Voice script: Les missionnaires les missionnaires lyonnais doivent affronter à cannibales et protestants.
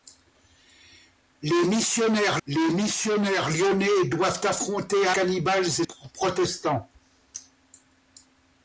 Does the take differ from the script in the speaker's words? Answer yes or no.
no